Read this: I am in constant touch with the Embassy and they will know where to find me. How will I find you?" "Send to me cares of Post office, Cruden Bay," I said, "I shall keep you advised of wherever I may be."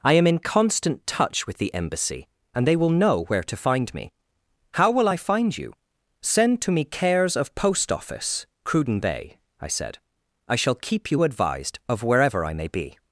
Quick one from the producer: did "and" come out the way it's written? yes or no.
yes